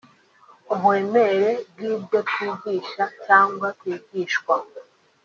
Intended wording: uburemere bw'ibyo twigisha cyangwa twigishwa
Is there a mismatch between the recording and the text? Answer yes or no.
no